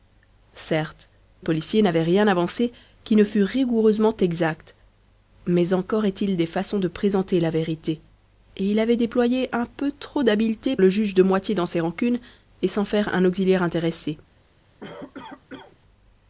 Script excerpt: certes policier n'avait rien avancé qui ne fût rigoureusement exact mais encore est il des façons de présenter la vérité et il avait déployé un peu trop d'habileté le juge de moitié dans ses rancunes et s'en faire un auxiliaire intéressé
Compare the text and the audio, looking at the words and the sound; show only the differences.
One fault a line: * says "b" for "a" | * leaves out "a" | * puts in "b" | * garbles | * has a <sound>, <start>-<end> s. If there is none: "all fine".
* has a cough, 14.8-15.8 s